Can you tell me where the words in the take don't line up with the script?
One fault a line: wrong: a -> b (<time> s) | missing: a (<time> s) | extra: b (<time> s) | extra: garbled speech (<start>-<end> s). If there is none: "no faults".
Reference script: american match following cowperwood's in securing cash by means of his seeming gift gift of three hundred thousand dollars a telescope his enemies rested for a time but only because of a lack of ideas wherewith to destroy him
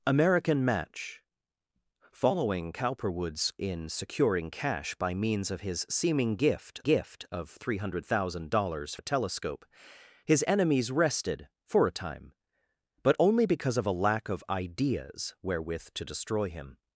no faults